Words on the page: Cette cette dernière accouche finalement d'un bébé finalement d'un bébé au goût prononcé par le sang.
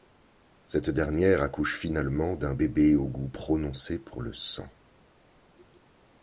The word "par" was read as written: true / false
false